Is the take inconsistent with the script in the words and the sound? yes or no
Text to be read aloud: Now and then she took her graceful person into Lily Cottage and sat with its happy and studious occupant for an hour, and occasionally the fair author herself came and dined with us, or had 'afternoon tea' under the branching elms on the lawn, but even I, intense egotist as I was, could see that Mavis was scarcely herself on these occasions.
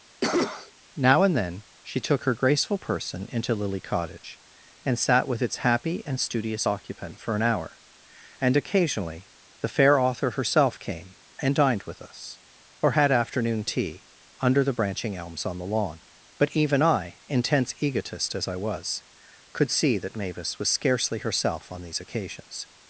yes